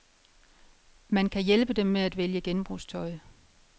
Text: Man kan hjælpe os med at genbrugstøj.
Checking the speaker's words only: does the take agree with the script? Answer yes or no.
no